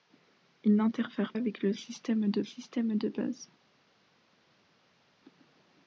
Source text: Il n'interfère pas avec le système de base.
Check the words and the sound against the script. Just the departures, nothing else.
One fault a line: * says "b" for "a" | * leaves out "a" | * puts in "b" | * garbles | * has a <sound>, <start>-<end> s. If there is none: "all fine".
* leaves out "pas"
* puts in "système de"